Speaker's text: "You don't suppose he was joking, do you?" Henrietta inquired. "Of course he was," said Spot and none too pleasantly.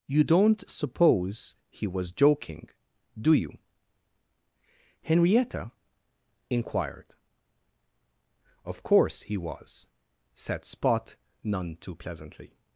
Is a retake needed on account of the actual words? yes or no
yes